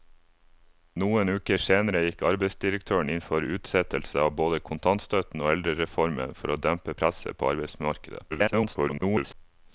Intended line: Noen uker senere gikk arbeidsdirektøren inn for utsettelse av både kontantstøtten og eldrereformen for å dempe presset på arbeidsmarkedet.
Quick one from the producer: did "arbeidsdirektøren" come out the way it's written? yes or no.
yes